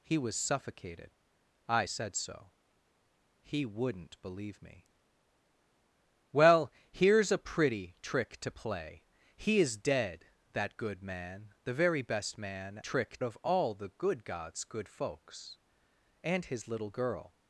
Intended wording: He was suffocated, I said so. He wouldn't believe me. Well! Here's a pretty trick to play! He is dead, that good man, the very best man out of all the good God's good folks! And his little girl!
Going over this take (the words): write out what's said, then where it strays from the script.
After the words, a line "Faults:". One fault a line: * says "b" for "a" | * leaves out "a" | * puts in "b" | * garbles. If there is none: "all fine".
He was suffocated, I said so. He wouldn't believe me. Well! Here's a pretty trick to play! He is dead, that good man, the very best man trick of all the good God's good folks! And his little girl!
Faults:
* says "trick" for "out"